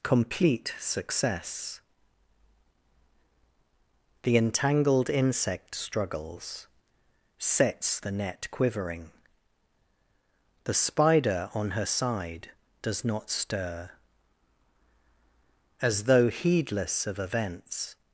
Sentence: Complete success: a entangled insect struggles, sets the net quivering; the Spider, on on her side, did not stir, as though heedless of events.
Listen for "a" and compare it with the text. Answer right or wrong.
wrong